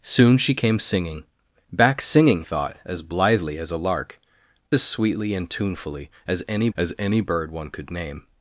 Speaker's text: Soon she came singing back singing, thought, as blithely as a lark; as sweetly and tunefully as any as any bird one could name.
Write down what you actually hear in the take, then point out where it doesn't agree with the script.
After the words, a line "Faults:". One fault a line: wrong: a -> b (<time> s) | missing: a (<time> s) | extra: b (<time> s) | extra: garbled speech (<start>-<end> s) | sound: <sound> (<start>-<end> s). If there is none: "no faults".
Soon she came singing back singing, thought, as blithely as a lark; as sweetly and tunefully as any as any bird one could name.
Faults:
no faults